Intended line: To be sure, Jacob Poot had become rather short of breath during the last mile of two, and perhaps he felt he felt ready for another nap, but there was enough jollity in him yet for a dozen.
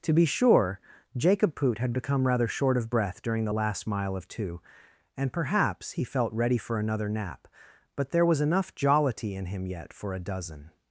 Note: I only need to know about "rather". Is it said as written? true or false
true